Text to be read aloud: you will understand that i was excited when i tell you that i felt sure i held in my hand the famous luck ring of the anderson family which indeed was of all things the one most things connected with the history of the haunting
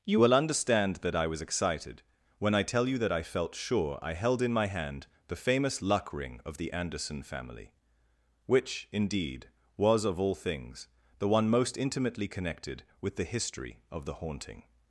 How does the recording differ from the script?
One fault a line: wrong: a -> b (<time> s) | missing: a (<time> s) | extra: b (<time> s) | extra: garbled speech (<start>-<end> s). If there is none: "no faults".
wrong: things -> intimately (11.8 s)